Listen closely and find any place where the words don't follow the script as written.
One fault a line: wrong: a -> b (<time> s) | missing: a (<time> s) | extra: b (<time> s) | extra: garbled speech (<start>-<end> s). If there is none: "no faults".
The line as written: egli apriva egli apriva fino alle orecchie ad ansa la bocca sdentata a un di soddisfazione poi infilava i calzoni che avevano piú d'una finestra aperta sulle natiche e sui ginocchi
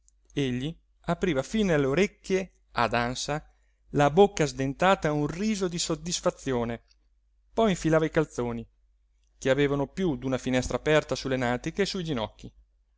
missing: egli apriva (1.4 s)
extra: riso (5.3 s)